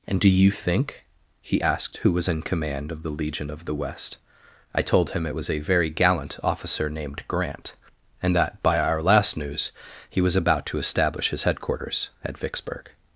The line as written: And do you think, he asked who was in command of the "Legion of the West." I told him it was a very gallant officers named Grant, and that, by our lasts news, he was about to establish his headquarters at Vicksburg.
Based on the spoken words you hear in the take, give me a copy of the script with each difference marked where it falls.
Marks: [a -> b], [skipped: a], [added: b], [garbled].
And do you think, he asked who was in command of the "Legion of the West." I told him it was a very gallant [officers -> officer] named Grant, and that, by our [lasts -> last] news, he was about to establish his headquarters at Vicksburg.